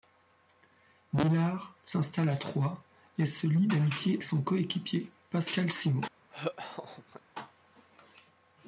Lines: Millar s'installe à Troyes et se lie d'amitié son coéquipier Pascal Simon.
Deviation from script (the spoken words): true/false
false